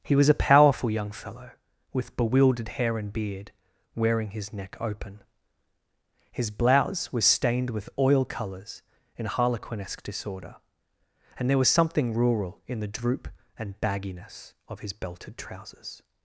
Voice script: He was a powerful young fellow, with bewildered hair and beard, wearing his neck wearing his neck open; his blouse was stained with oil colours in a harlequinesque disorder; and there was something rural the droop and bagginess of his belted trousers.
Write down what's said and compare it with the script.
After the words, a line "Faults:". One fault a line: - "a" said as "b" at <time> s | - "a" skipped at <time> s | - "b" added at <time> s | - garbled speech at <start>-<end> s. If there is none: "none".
He was a powerful young fellow, with bewildered hair and beard, wearing his neck open; his blouse was stained with oil colours in a harlequinesque disorder; and there was something rural in the droop and bagginess of his belted trousers.
Faults:
- "wearing his neck" skipped at 4.8 s
- "in" added at 12.7 s